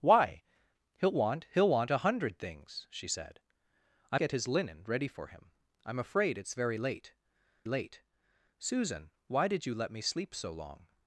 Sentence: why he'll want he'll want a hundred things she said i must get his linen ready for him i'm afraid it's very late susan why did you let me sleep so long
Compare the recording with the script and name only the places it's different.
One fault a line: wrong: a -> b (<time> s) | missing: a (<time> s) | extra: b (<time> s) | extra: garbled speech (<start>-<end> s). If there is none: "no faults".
missing: must (4.2 s)
extra: late (7.7 s)